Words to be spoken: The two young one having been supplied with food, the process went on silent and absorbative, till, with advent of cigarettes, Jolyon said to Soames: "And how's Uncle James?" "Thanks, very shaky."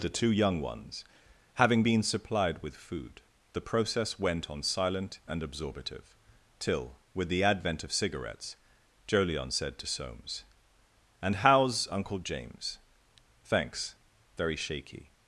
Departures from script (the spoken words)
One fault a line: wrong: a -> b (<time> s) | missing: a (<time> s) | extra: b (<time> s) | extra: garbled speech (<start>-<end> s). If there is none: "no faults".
wrong: one -> ones (0.6 s)
extra: the (7.3 s)